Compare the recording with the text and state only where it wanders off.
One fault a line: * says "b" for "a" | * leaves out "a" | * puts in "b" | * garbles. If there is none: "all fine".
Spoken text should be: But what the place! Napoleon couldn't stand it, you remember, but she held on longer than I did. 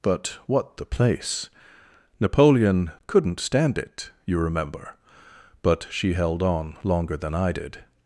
all fine